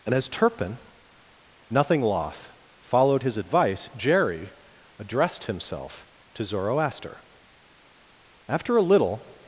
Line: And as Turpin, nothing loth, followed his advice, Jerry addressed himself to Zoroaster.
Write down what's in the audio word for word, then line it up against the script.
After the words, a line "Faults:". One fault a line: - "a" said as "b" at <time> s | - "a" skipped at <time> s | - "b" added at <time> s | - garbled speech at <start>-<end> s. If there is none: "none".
And as Turpin, nothing loth, followed his advice, Jerry addressed himself to Zoroaster. After a little
Faults:
- "After a little" added at 8.5 s